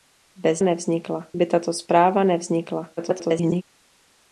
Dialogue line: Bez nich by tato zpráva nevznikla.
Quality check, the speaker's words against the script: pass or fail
fail